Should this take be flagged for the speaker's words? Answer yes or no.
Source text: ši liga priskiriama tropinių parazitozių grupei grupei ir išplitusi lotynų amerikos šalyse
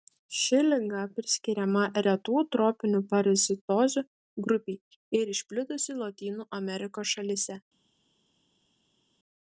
yes